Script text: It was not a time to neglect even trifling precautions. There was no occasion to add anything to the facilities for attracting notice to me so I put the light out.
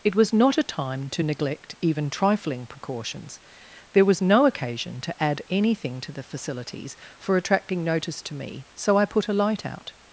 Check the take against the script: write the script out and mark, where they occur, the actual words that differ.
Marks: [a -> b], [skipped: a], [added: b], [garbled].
It was not a time to neglect even trifling precautions. There was no occasion to add anything to the facilities for attracting notice to me so I put [the -> a] light out.